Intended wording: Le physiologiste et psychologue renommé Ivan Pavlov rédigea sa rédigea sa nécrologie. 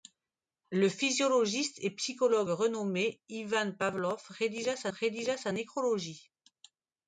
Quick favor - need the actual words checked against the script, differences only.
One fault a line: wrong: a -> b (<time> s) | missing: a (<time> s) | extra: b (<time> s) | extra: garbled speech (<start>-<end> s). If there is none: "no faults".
no faults